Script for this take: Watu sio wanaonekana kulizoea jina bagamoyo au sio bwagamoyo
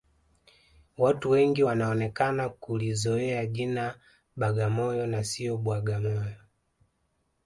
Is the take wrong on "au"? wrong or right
wrong